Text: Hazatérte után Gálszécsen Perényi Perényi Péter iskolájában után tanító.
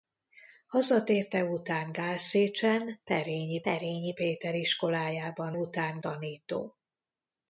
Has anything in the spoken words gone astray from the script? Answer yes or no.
no